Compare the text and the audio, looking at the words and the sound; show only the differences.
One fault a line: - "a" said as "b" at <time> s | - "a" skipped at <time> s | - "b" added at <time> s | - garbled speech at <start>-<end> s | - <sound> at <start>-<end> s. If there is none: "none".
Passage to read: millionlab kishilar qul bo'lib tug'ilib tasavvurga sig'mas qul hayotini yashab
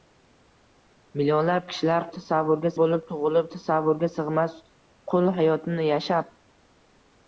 - "qul" said as "tasavvurga" at 2.2 s